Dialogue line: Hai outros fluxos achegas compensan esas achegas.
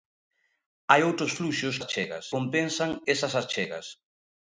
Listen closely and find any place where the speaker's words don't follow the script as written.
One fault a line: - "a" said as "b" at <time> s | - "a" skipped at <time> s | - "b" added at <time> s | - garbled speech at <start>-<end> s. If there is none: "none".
none